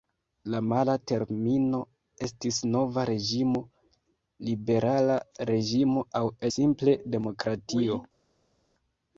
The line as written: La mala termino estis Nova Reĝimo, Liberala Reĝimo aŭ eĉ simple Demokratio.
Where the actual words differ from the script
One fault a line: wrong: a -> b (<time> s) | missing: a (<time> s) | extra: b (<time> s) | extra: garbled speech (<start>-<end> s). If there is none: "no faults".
missing: eĉ (6.3 s)